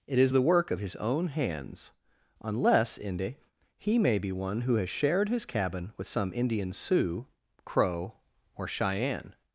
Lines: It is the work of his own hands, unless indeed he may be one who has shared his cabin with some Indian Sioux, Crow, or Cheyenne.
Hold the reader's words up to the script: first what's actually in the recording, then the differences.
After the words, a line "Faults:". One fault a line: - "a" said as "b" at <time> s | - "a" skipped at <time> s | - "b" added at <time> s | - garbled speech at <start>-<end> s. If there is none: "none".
It is the work of his own hands, unless inde he may be one who has shared his cabin with some Indian Sioux, Crow, or Cheyenne.
Faults:
- "indeed" said as "inde" at 3.0 s